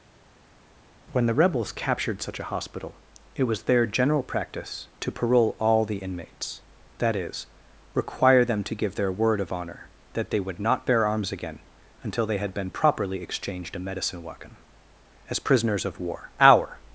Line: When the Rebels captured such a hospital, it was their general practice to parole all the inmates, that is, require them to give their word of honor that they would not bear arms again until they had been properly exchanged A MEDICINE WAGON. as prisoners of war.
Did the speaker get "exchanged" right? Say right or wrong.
right